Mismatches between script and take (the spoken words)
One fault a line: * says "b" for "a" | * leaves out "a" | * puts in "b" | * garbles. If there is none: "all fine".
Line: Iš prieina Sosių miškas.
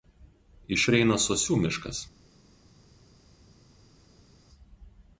all fine